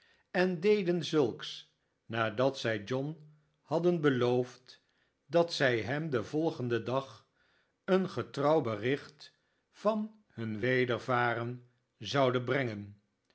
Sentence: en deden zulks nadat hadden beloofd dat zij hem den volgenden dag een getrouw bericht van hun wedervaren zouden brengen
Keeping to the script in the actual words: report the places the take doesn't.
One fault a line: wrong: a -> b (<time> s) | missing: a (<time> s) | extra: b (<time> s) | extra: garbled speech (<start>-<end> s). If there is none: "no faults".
extra: zij john (2.6 s)